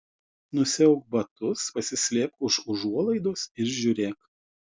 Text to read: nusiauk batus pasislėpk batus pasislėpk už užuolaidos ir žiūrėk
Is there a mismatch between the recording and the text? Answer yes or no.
yes